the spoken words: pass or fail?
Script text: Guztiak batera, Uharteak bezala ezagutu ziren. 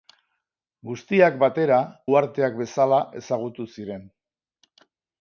pass